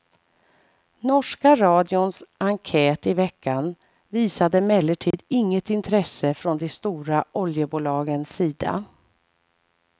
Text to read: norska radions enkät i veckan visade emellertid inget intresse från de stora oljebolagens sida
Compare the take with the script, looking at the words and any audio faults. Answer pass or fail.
fail